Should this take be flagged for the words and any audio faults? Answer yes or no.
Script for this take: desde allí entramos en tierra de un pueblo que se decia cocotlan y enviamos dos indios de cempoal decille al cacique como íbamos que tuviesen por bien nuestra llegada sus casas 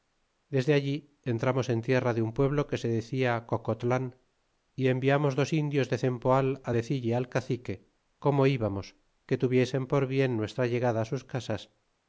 no